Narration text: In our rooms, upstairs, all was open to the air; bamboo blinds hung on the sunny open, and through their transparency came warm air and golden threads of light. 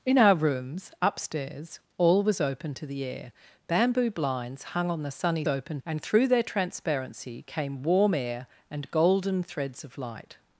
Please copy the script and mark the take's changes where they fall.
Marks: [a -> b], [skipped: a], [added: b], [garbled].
In our rooms, upstairs, all was open to the air; bamboo blinds hung on the sunny open, and through their transparency came warm air and golden threads of light.